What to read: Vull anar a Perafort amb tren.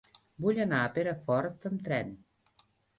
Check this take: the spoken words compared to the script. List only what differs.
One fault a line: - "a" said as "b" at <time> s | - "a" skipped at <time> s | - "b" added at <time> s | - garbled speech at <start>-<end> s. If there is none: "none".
none